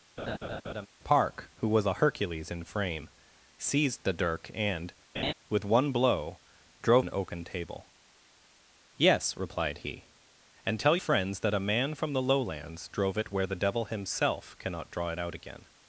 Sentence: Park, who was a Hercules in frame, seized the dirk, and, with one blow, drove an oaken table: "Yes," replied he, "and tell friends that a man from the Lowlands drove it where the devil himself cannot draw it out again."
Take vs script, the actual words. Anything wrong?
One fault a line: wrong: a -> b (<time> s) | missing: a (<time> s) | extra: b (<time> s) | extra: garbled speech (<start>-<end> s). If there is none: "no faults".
no faults